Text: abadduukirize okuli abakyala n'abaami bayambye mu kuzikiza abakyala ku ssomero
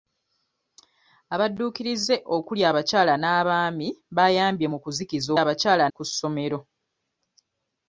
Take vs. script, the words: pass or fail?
pass